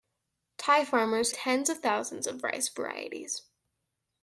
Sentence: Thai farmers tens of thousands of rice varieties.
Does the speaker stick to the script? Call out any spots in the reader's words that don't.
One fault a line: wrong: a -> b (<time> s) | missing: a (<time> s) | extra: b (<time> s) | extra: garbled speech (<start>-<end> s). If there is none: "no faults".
no faults